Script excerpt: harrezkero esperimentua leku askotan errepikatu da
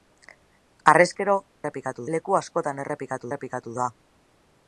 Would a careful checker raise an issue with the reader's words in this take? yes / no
yes